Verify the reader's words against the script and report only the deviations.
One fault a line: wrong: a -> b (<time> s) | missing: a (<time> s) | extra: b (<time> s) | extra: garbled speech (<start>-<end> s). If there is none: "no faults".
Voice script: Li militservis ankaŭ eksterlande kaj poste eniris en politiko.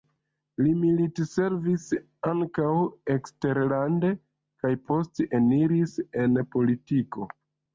no faults